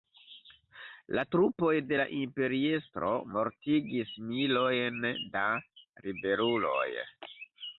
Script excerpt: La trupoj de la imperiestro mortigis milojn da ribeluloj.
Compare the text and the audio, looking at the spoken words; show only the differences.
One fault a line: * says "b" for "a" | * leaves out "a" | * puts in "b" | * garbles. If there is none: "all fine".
all fine